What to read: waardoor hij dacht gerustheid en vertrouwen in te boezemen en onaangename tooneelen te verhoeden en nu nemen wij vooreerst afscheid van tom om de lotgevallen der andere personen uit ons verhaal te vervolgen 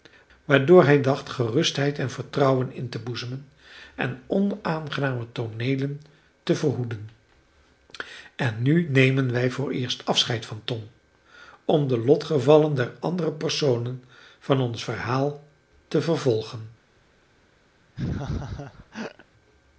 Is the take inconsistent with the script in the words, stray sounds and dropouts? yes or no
yes